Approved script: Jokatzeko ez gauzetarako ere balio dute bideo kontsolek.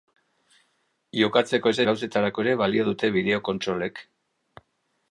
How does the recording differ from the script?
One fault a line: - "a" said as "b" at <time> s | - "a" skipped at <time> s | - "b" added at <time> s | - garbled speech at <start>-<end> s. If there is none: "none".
none